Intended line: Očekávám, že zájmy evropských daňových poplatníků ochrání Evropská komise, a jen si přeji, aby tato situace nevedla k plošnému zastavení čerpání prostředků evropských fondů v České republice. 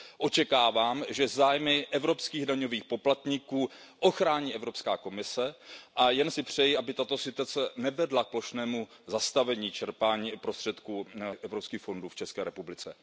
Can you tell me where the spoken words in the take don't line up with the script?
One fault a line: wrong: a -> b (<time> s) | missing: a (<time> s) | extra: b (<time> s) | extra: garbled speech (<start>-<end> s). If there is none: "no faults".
no faults